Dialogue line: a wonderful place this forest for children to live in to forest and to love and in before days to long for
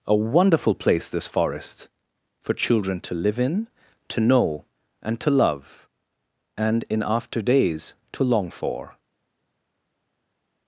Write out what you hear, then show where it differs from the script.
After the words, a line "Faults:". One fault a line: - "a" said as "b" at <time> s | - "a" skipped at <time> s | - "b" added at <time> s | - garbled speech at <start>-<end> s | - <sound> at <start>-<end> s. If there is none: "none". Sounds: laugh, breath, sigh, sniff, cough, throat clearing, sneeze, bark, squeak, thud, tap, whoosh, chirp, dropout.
a wonderful place this forest for children to live in to know and to love and in after days to long for
Faults:
- "forest" said as "know" at 4.2 s
- "before" said as "after" at 7.1 s